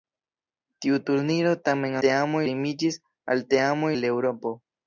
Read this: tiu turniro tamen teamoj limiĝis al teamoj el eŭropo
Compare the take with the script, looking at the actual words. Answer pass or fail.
pass